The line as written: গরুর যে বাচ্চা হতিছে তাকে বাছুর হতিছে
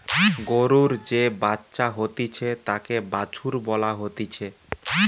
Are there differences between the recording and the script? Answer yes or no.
yes